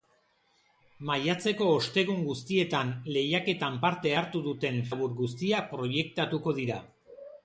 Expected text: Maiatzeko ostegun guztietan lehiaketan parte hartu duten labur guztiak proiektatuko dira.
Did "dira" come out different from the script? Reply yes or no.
no